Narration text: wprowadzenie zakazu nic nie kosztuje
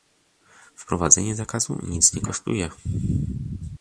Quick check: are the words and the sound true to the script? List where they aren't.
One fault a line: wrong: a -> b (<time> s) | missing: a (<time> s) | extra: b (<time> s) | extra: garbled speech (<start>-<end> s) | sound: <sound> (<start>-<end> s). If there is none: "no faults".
no faults